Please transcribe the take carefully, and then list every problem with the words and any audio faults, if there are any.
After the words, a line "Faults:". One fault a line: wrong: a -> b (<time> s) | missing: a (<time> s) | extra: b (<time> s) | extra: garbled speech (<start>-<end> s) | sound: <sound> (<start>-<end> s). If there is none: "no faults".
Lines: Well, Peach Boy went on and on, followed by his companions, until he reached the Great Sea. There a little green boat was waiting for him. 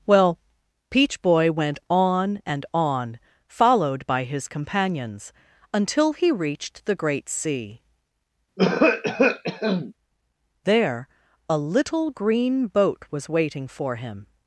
Well, Peach Boy went on and on, followed by his companions, until he reached the Great Sea. There a little green boat was waiting for him.
Faults:
sound: cough (8.6-9.9 s)